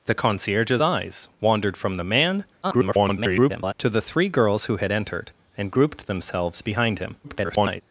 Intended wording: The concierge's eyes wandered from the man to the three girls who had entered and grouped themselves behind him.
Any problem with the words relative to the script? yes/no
yes